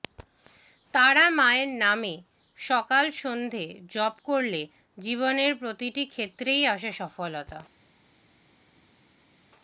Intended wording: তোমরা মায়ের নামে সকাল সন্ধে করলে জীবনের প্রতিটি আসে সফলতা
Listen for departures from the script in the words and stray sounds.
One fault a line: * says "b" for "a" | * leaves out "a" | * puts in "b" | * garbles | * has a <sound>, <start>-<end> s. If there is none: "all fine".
* says "তারা" for "তোমরা"
* puts in "জপ"
* puts in "ক্ষেত্রেই"